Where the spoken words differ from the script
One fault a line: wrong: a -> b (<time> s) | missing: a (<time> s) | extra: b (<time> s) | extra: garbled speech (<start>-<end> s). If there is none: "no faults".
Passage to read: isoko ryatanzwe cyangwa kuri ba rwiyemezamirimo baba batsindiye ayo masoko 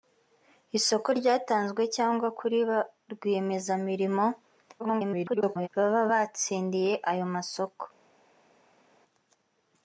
extra: garbled speech (4.8-5.7 s)